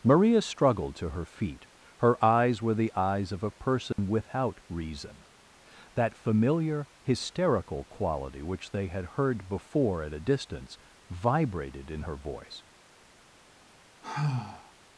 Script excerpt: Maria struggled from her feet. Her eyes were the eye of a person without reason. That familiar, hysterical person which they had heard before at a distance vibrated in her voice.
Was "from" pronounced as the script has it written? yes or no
no